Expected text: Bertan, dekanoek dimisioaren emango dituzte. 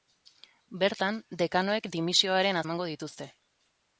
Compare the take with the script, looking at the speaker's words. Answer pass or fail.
pass